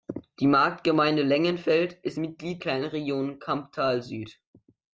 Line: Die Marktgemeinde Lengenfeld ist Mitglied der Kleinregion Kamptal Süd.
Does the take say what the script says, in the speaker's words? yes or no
no